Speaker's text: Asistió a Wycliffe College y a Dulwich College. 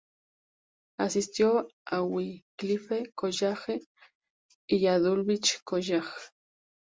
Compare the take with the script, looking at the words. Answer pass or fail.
pass